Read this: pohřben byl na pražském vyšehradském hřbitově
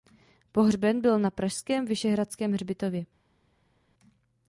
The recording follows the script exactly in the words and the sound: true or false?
true